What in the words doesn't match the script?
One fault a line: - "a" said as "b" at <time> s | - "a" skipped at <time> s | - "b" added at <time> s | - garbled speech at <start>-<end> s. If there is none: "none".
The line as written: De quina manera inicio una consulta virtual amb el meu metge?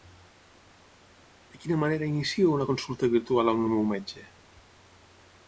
none